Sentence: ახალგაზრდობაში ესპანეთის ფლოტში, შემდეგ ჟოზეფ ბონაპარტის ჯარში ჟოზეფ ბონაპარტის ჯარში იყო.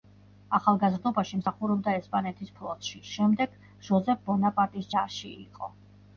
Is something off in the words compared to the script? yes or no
yes